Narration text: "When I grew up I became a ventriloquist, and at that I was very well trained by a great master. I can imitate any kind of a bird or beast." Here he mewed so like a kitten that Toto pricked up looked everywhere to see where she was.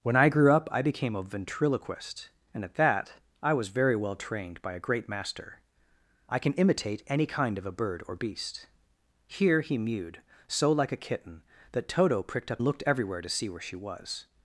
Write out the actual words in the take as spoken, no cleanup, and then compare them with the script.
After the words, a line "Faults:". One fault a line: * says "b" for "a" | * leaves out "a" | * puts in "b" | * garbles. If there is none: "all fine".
"When I grew up I became a ventriloquist, and at that I was very well trained by a great master. I can imitate any kind of a bird or beast." Here he mewed so like a kitten that Toto pricked up looked everywhere to see where she was.
Faults:
all fine